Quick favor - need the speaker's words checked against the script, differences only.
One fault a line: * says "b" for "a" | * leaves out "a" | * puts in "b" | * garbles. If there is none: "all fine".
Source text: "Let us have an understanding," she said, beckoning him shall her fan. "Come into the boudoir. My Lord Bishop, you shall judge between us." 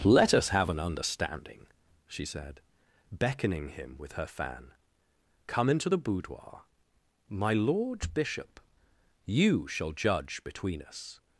* says "with" for "shall"